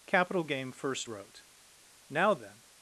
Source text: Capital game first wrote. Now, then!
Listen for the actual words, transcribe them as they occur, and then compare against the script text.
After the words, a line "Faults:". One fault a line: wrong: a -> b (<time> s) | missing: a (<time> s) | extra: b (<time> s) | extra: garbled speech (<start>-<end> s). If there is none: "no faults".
Capital game first wrote. Now, then!
Faults:
no faults